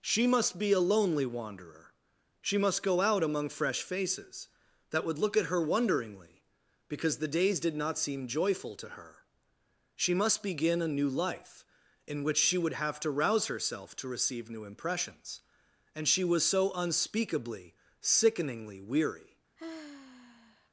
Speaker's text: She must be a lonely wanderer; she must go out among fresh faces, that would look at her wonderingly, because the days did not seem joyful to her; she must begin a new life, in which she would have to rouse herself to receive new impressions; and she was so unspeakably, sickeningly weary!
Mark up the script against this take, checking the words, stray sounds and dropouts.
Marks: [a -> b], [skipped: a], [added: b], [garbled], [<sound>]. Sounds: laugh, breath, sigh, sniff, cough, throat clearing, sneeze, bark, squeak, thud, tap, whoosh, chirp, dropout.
She must be a lonely wanderer; she must go out among fresh faces, that would look at her wonderingly, because the days did not seem joyful to her; she must begin a new life, in which she would have to rouse herself to receive new impressions; and she was so unspeakably, sickeningly weary! [sigh]